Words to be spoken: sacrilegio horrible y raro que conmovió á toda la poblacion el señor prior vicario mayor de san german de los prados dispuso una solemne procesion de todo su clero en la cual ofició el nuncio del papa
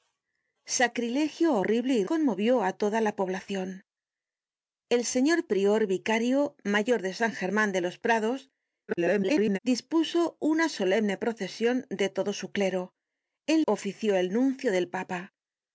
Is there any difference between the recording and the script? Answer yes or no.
yes